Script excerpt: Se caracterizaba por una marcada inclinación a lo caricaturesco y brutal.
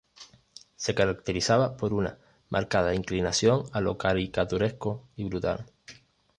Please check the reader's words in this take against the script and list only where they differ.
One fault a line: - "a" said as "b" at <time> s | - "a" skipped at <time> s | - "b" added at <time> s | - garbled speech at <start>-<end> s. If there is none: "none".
none